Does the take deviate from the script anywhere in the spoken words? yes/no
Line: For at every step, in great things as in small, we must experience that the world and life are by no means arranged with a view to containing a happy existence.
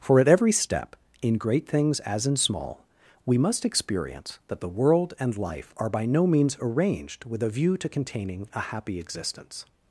no